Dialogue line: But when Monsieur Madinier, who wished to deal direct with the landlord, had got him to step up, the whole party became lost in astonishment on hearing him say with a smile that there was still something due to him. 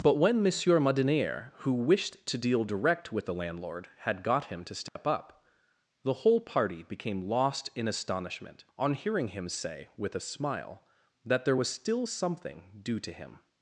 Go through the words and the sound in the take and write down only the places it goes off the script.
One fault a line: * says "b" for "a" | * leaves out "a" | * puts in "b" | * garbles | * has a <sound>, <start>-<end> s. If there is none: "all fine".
* has a dropout, 4.9-5.0 s